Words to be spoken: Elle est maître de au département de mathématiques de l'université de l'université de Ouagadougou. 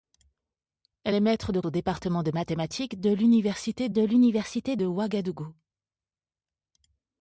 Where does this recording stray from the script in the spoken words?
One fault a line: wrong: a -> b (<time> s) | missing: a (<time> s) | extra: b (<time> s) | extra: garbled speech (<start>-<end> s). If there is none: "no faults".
no faults